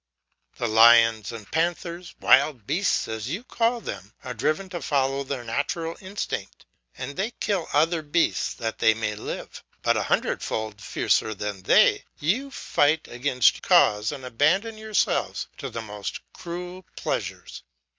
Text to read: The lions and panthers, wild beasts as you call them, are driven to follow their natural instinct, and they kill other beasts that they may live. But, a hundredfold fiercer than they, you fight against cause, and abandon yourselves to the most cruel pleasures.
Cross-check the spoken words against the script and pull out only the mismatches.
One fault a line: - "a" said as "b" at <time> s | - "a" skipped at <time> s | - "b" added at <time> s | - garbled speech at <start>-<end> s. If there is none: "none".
none